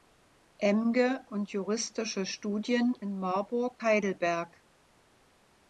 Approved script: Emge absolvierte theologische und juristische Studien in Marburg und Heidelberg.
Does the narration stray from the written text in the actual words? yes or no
yes